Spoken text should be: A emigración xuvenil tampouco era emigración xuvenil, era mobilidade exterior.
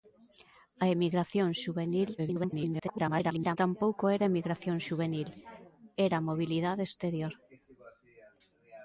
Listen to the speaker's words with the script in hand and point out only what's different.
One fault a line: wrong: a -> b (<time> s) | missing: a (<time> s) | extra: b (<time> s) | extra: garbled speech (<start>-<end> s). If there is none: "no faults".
extra: garbled speech (2.2-3.6 s)